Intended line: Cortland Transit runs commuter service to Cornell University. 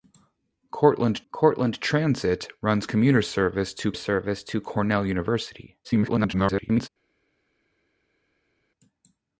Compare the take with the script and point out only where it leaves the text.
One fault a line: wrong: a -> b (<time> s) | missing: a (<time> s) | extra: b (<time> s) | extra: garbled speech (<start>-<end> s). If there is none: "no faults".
extra: cortland (1.3 s)
extra: service to (3.9 s)
extra: garbled speech (5.8-6.9 s)